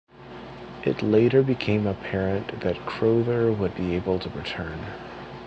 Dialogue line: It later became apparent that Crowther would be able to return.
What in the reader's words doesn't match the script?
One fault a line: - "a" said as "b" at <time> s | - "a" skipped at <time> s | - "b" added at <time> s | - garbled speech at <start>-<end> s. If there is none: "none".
none